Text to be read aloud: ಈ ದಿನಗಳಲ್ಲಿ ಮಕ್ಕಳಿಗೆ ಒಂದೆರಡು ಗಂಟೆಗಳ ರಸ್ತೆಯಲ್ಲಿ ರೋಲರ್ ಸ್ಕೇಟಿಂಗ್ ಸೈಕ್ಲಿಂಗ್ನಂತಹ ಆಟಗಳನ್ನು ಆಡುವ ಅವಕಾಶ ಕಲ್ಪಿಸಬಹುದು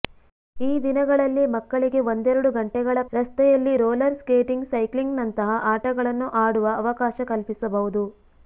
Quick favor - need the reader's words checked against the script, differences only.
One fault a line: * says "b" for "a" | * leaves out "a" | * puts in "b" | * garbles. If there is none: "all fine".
all fine